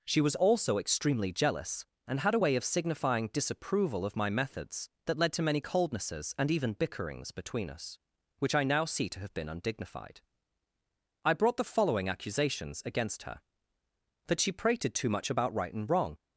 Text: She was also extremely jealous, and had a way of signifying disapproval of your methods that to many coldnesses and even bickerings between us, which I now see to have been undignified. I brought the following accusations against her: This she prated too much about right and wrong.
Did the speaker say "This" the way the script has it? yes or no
no